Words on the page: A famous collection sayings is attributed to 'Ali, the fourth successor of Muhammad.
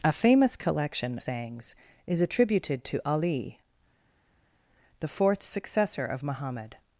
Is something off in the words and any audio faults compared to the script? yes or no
no